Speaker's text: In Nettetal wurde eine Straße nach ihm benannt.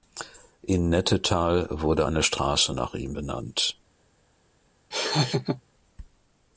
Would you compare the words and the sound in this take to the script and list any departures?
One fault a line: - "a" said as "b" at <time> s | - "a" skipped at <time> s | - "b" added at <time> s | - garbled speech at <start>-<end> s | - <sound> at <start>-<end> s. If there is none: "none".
- laugh at 4.9-5.6 s